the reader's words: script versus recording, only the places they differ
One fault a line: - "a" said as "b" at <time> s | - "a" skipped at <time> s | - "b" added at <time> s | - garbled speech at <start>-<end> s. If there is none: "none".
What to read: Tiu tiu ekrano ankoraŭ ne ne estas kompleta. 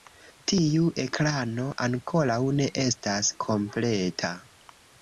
- "tiu" skipped at 0.9 s
- "ne" skipped at 2.7 s